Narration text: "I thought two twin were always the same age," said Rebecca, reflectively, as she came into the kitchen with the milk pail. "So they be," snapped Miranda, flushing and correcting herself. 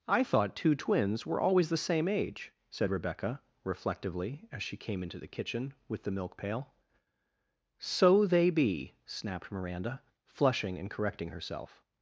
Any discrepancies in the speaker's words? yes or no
yes